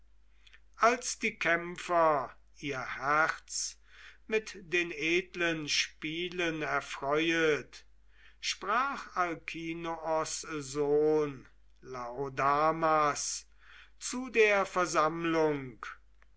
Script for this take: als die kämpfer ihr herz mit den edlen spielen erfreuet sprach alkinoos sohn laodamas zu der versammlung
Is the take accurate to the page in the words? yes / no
yes